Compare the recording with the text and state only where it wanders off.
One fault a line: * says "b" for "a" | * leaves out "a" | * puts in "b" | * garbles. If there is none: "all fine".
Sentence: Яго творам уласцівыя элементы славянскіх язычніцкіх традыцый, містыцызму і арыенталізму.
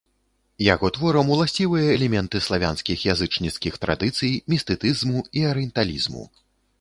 all fine